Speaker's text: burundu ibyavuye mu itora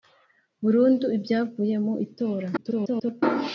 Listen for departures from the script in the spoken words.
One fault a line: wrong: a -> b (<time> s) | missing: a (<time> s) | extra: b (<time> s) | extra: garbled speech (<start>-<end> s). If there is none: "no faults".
extra: garbled speech (2.6-3.2 s)